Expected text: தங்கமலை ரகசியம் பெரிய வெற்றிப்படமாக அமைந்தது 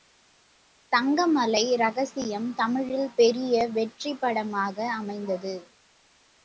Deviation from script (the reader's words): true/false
true